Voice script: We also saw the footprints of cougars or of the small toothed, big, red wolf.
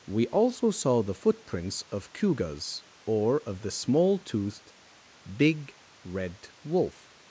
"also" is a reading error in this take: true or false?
false